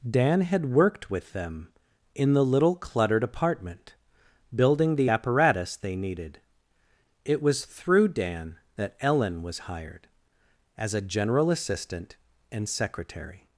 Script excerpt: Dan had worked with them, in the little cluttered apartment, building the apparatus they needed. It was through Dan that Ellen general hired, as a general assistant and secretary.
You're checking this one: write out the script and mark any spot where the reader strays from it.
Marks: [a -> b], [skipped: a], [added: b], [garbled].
Dan had worked with them, in the little cluttered apartment, building the apparatus they needed. It was through Dan that Ellen [general -> was] hired, as a general assistant and secretary.